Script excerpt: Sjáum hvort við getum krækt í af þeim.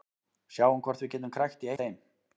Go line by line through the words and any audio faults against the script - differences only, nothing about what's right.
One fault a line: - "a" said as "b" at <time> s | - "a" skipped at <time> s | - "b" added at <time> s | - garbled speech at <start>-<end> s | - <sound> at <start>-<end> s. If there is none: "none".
none